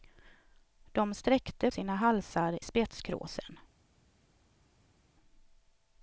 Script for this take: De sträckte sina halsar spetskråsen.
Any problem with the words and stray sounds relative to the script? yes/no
no